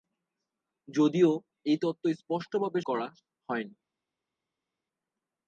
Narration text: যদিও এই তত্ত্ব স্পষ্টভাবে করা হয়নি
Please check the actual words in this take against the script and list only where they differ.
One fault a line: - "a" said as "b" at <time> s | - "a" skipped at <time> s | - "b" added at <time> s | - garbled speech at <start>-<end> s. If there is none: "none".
none